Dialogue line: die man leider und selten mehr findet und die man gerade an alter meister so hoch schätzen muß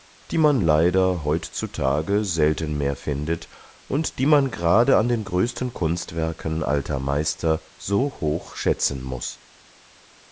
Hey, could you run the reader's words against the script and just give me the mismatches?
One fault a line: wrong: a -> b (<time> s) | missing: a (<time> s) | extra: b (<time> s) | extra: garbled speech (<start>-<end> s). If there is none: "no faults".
wrong: und -> heutzutage (1.3 s)
extra: den größten kunstwerken (5.1 s)